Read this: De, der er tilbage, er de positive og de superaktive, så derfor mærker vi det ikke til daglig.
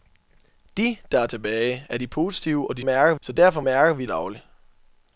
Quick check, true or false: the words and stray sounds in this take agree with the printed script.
false